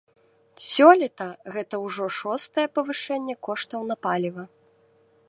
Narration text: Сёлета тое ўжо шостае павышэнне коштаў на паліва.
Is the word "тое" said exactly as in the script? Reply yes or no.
no